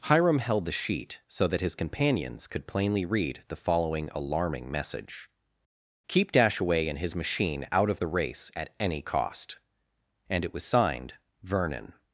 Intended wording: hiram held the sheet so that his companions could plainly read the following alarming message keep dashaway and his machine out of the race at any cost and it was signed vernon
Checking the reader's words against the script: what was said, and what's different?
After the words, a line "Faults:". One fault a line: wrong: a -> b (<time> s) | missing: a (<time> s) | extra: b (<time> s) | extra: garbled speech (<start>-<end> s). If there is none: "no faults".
hiram held the sheet so that his companions could plainly read the following alarming message keep dashaway and his machine out of the race at any cost and it was signed vernon
Faults:
no faults